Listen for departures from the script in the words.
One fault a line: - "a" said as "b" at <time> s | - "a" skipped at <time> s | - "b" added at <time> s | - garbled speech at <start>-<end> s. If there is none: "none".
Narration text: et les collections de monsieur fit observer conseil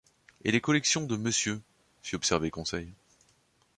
none